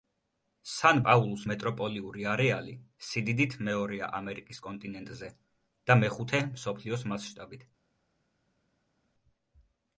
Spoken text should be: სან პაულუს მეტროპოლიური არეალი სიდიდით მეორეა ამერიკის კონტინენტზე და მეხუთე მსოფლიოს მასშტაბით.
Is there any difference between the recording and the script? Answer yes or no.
no